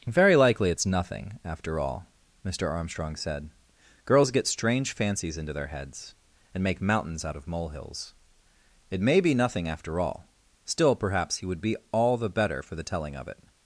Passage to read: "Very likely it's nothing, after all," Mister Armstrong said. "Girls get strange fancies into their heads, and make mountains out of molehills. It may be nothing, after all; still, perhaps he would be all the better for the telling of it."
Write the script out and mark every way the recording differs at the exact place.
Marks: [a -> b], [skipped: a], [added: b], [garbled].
"Very likely it's nothing, after all," Mister Armstrong said. "Girls get strange fancies into their heads, and make mountains out of molehills. It may be nothing, after all; still, perhaps he would be all the better for the telling of it."